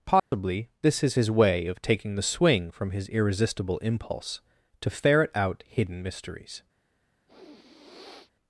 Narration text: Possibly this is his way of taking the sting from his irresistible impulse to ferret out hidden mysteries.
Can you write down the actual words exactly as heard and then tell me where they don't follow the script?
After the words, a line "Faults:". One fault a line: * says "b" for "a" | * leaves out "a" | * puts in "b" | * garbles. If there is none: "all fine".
Possibly this is his way of taking the swing from his irresistible impulse to ferret out hidden mysteries.
Faults:
* says "swing" for "sting"